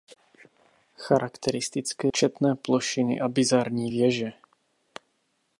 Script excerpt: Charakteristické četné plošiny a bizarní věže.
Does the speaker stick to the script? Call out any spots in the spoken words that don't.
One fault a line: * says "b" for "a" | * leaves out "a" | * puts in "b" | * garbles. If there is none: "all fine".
all fine